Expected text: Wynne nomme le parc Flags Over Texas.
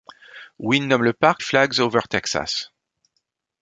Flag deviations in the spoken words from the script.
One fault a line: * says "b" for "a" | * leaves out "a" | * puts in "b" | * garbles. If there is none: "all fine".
all fine